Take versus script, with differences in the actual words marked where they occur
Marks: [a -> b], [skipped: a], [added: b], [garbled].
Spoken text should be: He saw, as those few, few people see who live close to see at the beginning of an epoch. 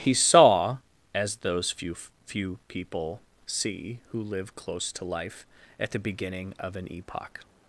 He saw, as those few, few people see who live close to [see -> life] at the beginning of an epoch.